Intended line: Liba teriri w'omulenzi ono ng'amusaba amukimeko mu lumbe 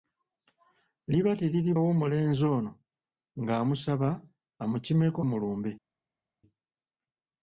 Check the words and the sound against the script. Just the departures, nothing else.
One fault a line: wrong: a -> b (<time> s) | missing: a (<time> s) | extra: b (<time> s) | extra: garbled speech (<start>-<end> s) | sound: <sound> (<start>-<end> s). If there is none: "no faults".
no faults